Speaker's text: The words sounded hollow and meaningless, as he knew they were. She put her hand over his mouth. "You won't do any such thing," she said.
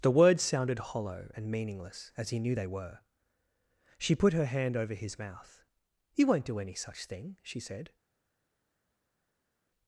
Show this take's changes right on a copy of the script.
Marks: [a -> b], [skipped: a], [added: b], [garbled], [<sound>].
The words sounded hollow and meaningless, as he knew they were. She put her hand over his mouth. "You won't do any such thing," she said.